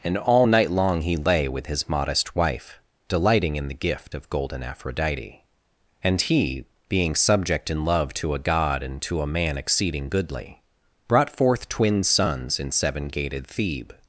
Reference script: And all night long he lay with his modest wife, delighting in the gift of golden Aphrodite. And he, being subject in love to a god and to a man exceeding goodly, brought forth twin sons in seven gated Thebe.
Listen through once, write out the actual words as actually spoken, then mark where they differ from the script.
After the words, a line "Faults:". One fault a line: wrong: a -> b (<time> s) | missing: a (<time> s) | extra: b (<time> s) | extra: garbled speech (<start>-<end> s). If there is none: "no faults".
And all night long he lay with his modest wife, delighting in the gift of golden Aphrodite. And he, being subject in love to a god and to a man exceeding goodly, brought forth twin sons in seven gated Thebe.
Faults:
no faults